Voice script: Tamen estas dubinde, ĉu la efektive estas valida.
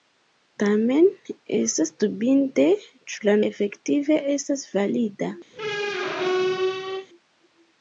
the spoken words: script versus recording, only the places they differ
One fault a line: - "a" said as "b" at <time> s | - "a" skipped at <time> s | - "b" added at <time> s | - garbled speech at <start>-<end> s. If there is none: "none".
none